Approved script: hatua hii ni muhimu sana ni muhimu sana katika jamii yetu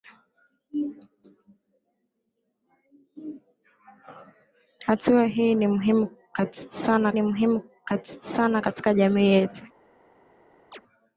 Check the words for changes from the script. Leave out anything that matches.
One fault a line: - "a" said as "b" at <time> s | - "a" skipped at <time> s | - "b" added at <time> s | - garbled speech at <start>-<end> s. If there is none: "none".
none